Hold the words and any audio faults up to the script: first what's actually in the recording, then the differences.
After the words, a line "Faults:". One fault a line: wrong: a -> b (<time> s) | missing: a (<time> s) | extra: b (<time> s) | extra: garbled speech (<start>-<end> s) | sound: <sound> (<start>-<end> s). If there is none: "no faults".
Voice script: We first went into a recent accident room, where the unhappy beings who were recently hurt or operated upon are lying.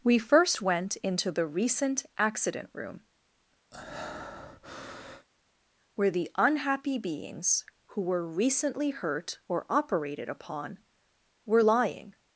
We first went into the recent accident room, where the unhappy beings who were recently hurt or operated upon were lying.
Faults:
wrong: a -> the (1.3 s)
sound: breath (3.7-5.3 s)
wrong: are -> were (11.5 s)